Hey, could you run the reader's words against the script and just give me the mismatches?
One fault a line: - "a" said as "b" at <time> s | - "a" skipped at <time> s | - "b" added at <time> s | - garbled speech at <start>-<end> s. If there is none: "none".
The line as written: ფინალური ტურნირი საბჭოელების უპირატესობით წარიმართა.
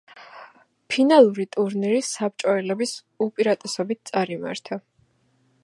none